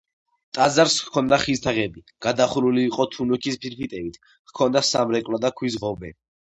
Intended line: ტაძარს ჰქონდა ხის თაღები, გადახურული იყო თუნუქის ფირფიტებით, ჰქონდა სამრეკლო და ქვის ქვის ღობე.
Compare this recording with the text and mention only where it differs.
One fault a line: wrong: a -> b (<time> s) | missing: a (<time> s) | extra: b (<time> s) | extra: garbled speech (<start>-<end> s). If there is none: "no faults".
missing: ქვის (5.8 s)